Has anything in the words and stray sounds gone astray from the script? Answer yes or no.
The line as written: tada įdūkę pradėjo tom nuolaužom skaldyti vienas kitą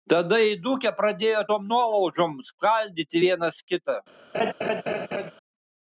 yes